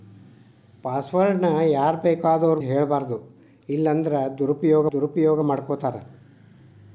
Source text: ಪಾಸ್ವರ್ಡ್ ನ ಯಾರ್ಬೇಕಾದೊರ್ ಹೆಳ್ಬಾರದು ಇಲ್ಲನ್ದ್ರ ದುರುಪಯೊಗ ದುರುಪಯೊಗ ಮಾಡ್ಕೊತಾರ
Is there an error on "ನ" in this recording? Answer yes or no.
no